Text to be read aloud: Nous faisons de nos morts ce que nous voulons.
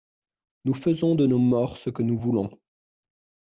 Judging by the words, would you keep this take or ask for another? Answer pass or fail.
pass